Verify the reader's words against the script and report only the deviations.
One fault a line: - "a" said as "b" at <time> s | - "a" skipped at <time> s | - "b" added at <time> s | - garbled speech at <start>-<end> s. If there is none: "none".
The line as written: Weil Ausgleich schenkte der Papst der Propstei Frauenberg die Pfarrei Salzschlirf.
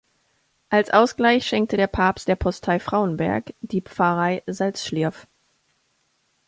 - "Weil" said as "Als" at 0.7 s